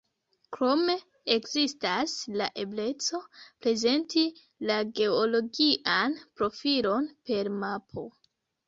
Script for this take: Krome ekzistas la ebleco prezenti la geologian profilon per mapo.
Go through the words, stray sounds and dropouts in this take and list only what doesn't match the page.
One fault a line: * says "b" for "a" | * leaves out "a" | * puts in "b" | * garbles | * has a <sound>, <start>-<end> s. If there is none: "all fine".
all fine